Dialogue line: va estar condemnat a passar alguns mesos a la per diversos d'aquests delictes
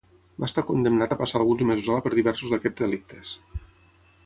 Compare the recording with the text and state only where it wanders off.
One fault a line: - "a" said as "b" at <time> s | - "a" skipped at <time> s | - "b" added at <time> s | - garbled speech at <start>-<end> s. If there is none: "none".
none